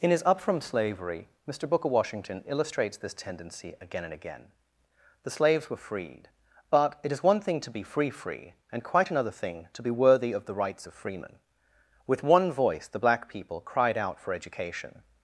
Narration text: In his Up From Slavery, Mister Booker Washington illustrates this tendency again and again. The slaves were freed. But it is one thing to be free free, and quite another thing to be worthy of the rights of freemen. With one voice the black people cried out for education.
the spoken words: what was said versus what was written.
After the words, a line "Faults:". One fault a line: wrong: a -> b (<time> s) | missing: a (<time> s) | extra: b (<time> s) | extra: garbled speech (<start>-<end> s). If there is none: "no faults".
In his Up From Slavery, Mister Booker Washington illustrates this tendency again and again. The slaves were freed. But it is one thing to be free free, and quite another thing to be worthy of the rights of freemen. With one voice the black people cried out for education.
Faults:
no faults